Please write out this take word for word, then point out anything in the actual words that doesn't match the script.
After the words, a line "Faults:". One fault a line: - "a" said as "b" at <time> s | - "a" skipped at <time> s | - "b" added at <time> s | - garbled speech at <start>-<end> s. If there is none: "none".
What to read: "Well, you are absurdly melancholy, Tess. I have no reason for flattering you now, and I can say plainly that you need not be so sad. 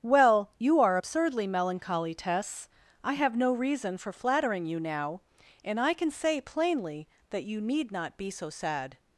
"Well, you are absurdly melancholy, Tess. I have no reason for flattering you now, and I can say plainly that you need not be so sad.
Faults:
none